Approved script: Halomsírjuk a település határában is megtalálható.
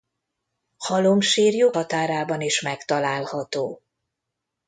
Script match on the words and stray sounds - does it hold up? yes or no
no